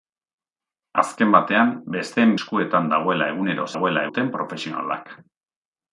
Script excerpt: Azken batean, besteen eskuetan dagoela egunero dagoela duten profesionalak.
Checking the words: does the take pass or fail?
pass